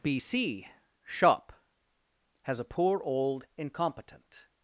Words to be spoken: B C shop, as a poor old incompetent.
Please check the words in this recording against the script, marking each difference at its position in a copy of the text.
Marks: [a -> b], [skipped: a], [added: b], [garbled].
B C shop, [as -> has] a poor old incompetent.